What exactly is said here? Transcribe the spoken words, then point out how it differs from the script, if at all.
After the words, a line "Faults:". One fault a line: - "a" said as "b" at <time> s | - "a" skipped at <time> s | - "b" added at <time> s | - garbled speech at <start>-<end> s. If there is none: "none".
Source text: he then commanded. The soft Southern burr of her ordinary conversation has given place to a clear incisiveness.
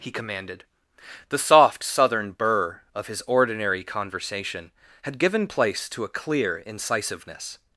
he commanded. The soft Southern burr of his ordinary conversation had given place to a clear incisiveness.
Faults:
- "then" skipped at 0.1 s
- "her" said as "his" at 3.1 s
- "has" said as "had" at 5.0 s